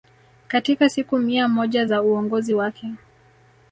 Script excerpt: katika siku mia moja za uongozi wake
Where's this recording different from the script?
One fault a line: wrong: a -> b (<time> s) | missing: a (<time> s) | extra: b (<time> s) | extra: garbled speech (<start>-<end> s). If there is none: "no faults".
no faults